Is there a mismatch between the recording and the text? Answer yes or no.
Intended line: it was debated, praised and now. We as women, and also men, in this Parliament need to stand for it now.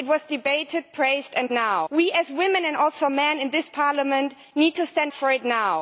no